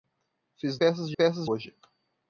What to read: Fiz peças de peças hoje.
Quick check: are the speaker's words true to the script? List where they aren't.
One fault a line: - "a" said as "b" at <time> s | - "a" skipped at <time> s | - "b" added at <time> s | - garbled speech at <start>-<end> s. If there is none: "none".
none